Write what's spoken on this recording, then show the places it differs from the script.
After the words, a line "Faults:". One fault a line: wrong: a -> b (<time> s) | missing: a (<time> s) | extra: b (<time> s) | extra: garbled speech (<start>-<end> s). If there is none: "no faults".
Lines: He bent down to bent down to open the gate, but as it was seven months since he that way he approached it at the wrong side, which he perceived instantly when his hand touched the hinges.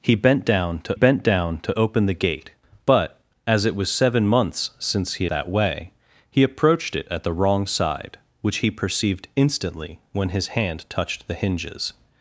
He bent down to bent down to open the gate, but as it was seven months since he that way he approached it at the wrong side, which he perceived instantly when his hand touched the hinges.
Faults:
no faults